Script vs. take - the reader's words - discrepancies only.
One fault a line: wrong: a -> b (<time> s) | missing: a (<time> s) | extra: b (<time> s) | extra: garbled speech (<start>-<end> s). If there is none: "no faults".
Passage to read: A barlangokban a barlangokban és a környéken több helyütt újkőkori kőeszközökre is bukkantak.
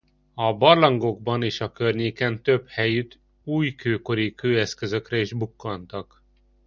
missing: a barlangokban (1.4 s)